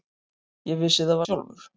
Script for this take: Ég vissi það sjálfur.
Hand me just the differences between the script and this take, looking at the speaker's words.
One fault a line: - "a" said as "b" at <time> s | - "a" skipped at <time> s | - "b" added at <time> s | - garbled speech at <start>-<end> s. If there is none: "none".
none